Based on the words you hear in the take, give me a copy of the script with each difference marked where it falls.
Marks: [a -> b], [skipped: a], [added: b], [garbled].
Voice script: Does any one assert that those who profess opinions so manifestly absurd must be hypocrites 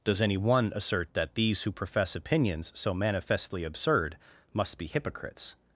Does any one assert that [those -> these] who profess opinions so manifestly absurd must be hypocrites